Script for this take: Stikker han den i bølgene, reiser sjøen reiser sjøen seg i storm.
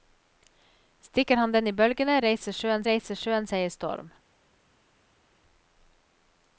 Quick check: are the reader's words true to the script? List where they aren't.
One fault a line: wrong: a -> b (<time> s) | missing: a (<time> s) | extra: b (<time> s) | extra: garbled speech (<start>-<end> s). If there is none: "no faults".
no faults